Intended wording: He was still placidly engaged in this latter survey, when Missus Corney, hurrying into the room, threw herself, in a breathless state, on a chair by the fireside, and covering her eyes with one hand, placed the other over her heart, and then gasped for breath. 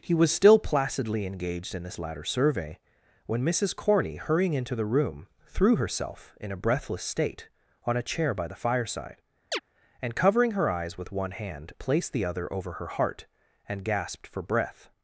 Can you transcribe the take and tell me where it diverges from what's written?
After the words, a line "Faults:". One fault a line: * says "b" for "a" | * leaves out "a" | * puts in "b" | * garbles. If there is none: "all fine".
He was still placidly engaged in this latter survey, when Missus Corney, hurrying into the room, threw herself, in a breathless state, on a chair by the fireside, and covering her eyes with one hand, placed the other over her heart, and gasped for breath.
Faults:
* leaves out "then"